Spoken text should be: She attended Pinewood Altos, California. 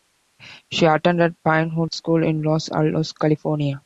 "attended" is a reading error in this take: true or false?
false